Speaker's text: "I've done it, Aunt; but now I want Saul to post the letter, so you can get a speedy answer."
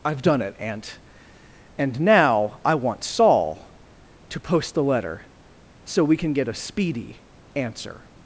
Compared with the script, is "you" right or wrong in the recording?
wrong